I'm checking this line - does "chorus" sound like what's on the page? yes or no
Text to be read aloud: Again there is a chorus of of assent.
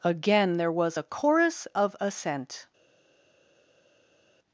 yes